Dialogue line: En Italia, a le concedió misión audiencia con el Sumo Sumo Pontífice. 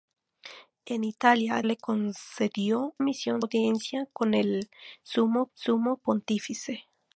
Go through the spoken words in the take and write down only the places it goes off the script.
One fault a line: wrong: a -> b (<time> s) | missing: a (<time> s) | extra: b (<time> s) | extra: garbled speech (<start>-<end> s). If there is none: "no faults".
no faults